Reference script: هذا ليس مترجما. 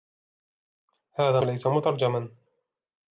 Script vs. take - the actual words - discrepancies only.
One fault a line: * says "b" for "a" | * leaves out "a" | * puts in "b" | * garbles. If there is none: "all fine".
all fine